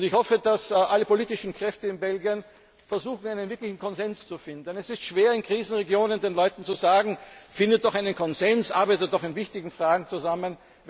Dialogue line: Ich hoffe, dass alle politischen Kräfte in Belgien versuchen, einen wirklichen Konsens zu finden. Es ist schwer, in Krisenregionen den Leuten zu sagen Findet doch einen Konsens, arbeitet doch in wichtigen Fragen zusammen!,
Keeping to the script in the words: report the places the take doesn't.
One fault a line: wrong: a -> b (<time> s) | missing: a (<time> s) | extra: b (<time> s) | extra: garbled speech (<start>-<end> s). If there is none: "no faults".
no faults